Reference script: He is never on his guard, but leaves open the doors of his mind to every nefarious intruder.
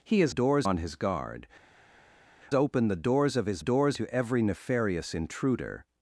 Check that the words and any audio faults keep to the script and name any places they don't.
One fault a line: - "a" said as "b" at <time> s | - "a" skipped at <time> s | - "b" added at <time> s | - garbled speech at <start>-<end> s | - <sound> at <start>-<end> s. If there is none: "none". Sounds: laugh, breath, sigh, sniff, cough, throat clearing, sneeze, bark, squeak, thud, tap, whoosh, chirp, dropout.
- "never" said as "doors" at 0.3 s
- "but leaves" skipped at 1.5 s
- "mind" said as "doors" at 3.6 s